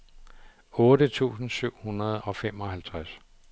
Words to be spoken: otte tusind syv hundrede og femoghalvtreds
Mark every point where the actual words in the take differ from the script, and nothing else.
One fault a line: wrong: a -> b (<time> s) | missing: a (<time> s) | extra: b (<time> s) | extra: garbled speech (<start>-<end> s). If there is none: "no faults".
no faults